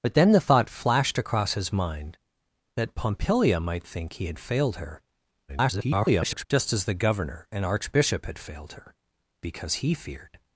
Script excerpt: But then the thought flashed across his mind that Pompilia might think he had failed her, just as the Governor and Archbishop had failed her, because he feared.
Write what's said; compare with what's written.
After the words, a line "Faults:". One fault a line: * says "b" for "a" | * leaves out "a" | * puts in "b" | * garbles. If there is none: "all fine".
But then the thought flashed across his mind that Pompilia might think he had failed her, [garbled] just as the Governor and Archbishop had failed her, because he feared.
Faults:
* garbles